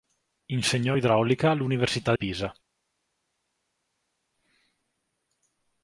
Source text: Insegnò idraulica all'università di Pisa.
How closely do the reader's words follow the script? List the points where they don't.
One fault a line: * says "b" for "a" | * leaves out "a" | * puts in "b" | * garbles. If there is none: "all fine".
* leaves out "di"